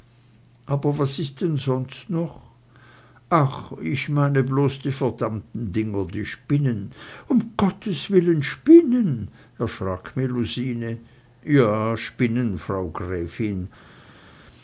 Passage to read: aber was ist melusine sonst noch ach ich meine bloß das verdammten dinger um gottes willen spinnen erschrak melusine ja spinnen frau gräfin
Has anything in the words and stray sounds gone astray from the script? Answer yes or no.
yes